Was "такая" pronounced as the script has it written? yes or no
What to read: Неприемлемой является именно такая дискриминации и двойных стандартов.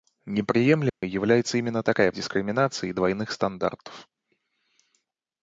yes